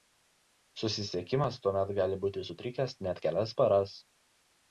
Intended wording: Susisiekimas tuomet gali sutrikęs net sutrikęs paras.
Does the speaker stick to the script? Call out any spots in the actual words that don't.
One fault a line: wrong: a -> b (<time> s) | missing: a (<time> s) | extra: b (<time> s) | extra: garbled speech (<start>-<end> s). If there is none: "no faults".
extra: būti (2.2 s)
wrong: sutrikęs -> kelias (3.3 s)